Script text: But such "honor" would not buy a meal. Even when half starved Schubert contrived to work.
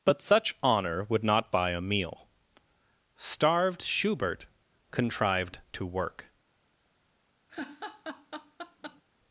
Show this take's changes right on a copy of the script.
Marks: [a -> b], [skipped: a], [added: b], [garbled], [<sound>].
But such "honor" would not buy a meal. [skipped: Even when half] starved Schubert contrived to work. [laugh]